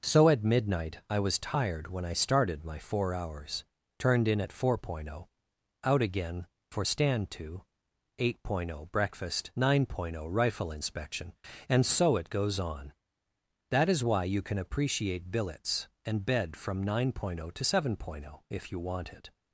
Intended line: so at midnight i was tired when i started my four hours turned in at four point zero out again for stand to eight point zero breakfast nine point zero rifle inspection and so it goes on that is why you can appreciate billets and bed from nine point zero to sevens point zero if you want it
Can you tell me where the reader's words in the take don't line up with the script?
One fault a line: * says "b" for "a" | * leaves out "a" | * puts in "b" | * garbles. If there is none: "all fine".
* says "seven" for "sevens"